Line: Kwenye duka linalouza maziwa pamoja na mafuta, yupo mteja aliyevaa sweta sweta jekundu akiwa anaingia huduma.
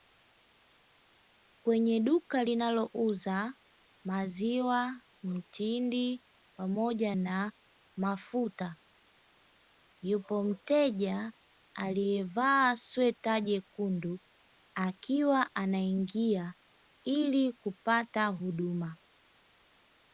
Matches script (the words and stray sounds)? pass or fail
fail